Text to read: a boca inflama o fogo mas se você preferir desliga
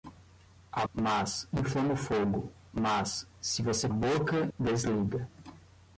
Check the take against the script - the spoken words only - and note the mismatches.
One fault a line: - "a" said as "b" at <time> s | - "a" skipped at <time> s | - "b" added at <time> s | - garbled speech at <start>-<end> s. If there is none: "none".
- "boca" said as "mas" at 0.9 s
- "preferir" said as "boca" at 3.9 s